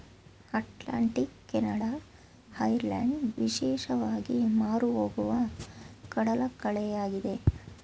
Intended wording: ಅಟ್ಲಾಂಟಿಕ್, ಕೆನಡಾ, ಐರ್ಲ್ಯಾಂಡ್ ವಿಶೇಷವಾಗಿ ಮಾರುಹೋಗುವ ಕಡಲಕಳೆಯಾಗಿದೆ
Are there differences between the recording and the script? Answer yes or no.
no